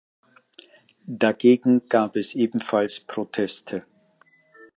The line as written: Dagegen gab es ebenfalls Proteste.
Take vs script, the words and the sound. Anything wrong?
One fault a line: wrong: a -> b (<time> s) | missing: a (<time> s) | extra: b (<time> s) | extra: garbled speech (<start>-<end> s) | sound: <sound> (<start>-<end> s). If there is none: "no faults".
no faults